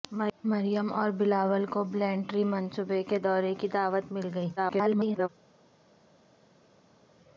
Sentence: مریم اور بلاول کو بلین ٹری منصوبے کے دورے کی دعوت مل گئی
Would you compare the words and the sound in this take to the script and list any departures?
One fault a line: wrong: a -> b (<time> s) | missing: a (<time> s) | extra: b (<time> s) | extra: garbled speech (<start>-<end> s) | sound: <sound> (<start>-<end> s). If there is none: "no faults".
extra: garbled speech (4.6-5.3 s)